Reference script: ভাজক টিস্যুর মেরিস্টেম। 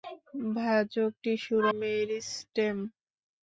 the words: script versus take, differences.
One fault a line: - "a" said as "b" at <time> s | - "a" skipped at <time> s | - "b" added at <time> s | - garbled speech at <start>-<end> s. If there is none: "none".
none